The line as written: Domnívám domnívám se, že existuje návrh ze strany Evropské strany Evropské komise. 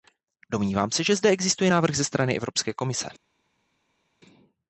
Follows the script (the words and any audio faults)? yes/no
no